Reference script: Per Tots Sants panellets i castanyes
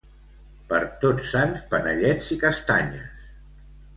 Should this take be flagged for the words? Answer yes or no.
no